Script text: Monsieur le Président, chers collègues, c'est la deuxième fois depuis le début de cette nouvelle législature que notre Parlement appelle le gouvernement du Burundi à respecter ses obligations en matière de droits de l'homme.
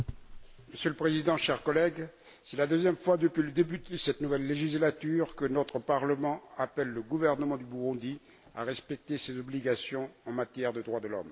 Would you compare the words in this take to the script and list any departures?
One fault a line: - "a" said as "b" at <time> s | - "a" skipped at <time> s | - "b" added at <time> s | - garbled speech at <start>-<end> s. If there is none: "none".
none